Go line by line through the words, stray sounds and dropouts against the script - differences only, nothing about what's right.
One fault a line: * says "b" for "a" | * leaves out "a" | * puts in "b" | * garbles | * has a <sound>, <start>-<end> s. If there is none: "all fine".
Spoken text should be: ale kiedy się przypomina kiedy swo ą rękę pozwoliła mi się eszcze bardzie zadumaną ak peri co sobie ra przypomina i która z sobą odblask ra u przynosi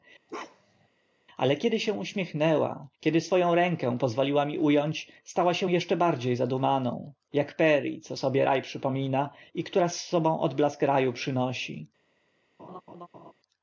* has a bark, 0.3-0.9 s
* says "uśmiechnęła" for "przypomina"
* puts in "u ąć stała"
* has a laugh, 12.6-13.3 s